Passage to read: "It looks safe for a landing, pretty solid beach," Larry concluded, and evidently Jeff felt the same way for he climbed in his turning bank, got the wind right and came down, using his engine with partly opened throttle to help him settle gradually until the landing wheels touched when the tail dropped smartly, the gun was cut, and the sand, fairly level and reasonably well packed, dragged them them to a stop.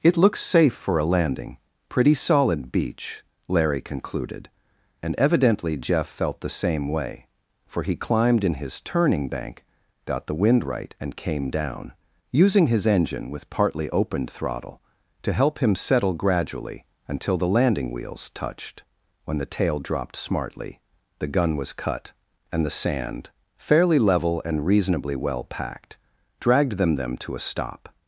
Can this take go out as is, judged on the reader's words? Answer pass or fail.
pass